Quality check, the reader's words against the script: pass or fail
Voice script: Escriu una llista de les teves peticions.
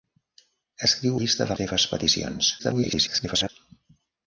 fail